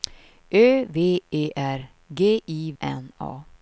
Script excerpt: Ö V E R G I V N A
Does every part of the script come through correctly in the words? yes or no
no